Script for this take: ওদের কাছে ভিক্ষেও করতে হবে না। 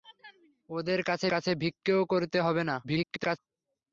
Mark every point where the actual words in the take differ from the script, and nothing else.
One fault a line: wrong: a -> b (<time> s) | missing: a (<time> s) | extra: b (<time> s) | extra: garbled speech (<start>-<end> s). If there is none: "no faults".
extra: কাছে (1.3 s)
extra: garbled speech (2.8-3.4 s)